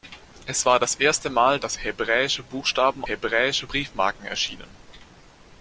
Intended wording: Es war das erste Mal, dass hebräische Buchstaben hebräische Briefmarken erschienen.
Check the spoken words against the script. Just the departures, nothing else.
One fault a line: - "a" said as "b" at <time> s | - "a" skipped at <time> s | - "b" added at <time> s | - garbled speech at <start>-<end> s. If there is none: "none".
none